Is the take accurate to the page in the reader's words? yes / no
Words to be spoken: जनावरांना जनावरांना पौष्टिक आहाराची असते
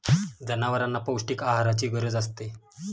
no